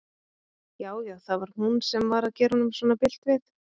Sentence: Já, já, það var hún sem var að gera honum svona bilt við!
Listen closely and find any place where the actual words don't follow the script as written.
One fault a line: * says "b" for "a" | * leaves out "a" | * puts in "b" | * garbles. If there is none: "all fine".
all fine